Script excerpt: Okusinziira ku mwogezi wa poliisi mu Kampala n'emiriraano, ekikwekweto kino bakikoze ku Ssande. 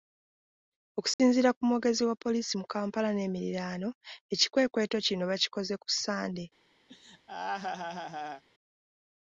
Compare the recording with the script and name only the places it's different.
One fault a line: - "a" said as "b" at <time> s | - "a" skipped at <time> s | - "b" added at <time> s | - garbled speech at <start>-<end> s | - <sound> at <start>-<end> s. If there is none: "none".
- dropout at 1.1-1.2 s
- laugh at 6.9-8.4 s